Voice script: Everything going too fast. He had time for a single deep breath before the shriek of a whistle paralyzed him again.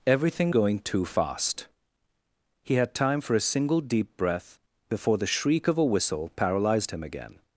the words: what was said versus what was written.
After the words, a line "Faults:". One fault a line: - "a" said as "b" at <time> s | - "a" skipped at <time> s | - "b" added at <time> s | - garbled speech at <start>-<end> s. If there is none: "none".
Everything going too fast. He had time for a single deep breath before the shriek of a whistle paralyzed him again.
Faults:
none